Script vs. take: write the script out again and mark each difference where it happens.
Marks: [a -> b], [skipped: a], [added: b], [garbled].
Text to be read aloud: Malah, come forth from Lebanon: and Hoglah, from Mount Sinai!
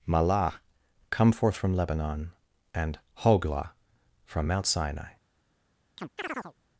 Malah, come forth from Lebanon: and Hoglah, from Mount Sinai!